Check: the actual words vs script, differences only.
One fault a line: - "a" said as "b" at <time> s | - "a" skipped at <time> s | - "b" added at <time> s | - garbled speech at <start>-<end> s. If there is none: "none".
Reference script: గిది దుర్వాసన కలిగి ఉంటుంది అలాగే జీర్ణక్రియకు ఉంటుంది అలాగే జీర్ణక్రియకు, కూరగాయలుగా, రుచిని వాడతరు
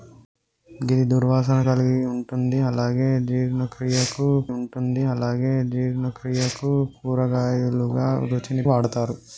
none